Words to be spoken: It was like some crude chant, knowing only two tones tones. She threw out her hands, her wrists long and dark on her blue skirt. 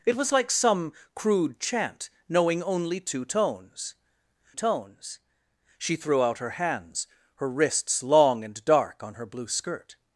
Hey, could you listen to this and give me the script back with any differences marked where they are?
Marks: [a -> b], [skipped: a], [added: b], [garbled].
It was like some crude chant, knowing only two tones tones. She threw out her hands, her wrists long and dark on her blue skirt.